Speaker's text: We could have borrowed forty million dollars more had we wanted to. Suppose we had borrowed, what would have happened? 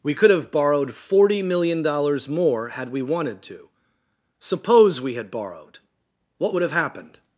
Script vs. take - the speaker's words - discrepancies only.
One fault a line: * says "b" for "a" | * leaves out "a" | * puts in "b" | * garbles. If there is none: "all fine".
all fine